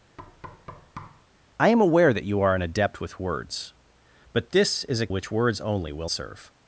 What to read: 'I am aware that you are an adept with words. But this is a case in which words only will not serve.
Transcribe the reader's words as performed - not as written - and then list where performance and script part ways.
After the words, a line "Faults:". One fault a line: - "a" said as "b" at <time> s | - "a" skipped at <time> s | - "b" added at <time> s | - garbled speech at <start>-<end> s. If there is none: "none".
'I am aware that you are an adept with words. But this is a which words only will serve.
Faults:
- "case in" skipped at 5.1 s
- "not" skipped at 6.1 s